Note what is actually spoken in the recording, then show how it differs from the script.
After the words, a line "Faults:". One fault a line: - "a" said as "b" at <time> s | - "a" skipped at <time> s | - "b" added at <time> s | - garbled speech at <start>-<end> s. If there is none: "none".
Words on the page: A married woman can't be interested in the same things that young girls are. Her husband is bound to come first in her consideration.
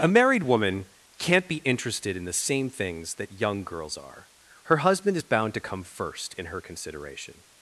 A married woman can't be interested in the same things that young girls are. Her husband is bound to come first in her consideration.
Faults:
none